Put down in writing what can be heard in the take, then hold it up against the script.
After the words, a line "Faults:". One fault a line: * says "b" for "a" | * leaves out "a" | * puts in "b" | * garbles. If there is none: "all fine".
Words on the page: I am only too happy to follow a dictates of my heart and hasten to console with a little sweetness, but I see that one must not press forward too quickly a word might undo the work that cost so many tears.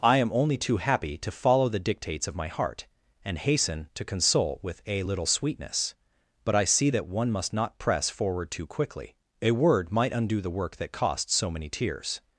I am only too happy to follow the dictates of my heart and hasten to console with a little sweetness, but I see that one must not press forward too quickly a word might undo the work that cost so many tears.
Faults:
* says "the" for "a"